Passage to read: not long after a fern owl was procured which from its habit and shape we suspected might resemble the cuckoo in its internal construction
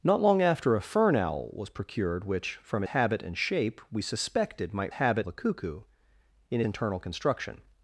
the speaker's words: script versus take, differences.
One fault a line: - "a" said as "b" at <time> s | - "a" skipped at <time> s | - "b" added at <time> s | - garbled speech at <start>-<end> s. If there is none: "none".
- "its" skipped at 2.8 s
- "resemble" said as "habit" at 4.9 s
- "its" skipped at 6.6 s